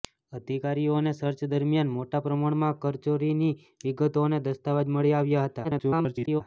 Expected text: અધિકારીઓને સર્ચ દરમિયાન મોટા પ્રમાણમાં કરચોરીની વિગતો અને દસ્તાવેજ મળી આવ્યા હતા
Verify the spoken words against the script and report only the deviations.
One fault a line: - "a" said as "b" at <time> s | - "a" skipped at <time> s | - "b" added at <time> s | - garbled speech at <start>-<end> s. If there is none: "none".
- garbled speech at 5.6-6.4 s